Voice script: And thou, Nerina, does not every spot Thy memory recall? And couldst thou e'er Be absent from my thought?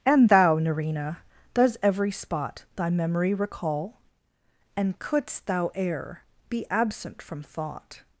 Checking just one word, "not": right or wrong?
wrong